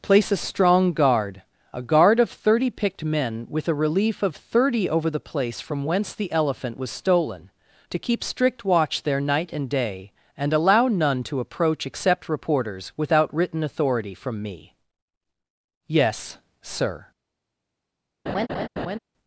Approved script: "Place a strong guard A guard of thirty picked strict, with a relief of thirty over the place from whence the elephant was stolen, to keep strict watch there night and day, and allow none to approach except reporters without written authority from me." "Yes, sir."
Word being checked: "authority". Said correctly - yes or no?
yes